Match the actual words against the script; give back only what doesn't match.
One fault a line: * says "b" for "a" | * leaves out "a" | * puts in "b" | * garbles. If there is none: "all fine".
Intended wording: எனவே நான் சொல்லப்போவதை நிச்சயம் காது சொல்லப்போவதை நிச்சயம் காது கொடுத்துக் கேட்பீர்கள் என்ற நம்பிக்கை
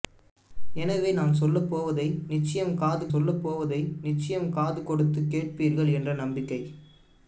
all fine